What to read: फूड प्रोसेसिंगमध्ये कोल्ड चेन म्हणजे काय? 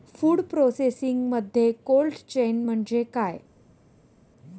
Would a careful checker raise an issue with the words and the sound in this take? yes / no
no